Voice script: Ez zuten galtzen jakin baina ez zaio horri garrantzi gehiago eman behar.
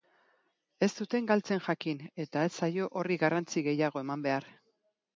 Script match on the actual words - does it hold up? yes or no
no